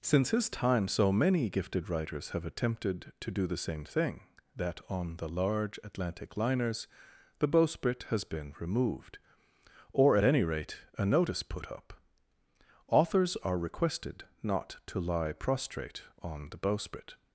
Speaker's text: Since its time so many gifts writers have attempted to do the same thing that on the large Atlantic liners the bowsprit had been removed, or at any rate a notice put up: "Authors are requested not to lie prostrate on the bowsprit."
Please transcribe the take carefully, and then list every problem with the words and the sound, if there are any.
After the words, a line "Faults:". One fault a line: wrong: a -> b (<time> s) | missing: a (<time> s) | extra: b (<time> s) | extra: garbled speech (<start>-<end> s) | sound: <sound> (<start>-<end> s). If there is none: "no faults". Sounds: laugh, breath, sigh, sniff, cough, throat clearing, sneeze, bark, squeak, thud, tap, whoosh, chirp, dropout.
Since his time so many gifted writers have attempted to do the same thing that on the large Atlantic liners the bowsprit has been removed, or at any rate a notice put up: "Authors are requested not to lie prostrate on the bowsprit."
Faults:
wrong: its -> his (0.3 s)
wrong: gifts -> gifted (1.5 s)
wrong: had -> has (8.1 s)